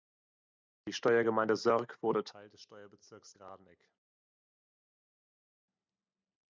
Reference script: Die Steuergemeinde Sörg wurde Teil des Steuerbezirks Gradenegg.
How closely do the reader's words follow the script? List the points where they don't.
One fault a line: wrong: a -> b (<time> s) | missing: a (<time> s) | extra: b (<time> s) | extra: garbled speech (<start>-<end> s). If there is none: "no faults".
no faults